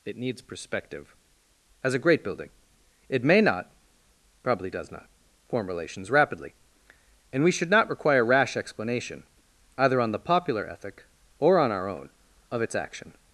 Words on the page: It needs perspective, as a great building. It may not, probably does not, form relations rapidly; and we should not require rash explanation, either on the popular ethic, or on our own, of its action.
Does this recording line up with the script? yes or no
yes